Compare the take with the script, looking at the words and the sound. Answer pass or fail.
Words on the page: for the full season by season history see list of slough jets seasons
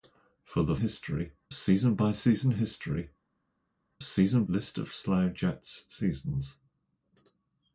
fail